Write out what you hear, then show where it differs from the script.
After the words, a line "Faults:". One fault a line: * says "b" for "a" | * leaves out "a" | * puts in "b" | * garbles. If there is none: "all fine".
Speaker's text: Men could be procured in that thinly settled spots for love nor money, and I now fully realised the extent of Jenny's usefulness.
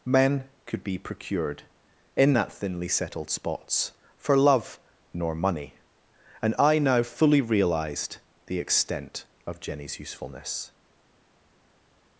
Men could be procured in that thinly settled spots for love nor money, and I now fully realised the extent of Jenny's usefulness.
Faults:
all fine